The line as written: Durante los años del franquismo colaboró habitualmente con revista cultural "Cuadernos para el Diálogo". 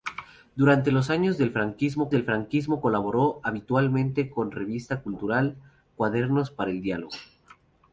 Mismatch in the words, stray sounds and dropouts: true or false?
true